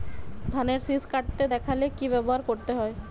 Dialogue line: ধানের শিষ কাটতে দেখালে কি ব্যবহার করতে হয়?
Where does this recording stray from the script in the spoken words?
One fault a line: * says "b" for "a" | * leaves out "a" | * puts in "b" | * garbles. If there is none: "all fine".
all fine